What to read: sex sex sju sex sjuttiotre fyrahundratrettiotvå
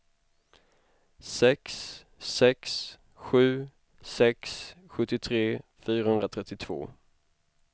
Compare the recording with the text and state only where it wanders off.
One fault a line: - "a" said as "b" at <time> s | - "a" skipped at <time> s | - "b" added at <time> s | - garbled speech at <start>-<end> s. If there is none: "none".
none